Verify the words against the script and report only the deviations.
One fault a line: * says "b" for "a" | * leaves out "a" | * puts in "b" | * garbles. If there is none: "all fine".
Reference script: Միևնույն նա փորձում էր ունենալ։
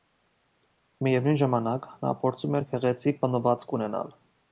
* puts in "ժամանակ"
* puts in "գեղեցիկ պատմվածք"